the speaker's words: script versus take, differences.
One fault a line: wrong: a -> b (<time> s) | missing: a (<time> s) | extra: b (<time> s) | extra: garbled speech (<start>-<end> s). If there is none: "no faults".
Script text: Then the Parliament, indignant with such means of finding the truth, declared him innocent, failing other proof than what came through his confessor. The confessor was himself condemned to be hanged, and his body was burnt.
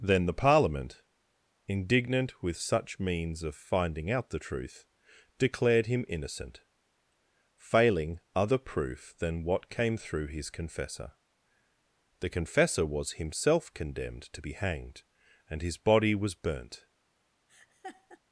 extra: out (4.1 s)